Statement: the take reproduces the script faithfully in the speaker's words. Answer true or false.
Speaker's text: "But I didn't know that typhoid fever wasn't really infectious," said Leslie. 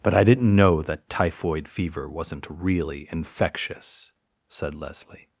true